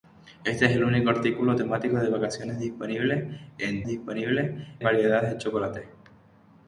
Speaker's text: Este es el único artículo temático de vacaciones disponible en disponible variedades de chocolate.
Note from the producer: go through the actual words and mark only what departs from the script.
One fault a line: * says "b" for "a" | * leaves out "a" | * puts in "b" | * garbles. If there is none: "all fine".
all fine